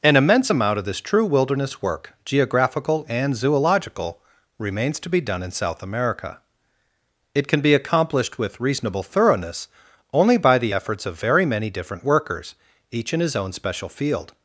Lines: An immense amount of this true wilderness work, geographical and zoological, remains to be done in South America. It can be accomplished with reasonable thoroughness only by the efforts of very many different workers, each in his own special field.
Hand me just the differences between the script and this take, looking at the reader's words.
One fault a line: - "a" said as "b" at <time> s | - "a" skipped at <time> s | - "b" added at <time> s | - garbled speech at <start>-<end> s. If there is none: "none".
none